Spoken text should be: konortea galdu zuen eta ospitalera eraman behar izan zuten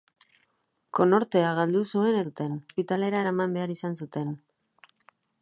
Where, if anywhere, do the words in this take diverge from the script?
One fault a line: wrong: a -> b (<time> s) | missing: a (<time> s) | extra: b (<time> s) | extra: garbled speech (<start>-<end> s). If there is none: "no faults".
wrong: eta -> zuten (2.3 s)